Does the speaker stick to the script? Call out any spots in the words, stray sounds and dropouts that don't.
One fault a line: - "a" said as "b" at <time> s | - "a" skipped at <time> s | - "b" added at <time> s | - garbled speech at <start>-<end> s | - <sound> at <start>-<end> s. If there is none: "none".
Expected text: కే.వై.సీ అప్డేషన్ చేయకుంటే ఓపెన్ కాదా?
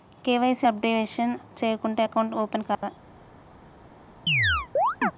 - "అకౌంట్" added at 2.0 s
- dropout at 2.7-2.8 s
- chirp at 4.3-5.1 s